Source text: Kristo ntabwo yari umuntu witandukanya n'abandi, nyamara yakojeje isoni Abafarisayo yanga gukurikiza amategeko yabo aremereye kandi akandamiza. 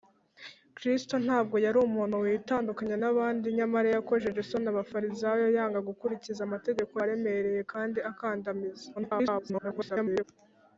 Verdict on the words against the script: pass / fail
fail